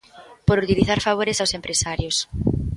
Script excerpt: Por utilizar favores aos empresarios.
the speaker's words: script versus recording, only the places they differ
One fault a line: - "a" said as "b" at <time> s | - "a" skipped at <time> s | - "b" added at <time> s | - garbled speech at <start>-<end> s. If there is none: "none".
none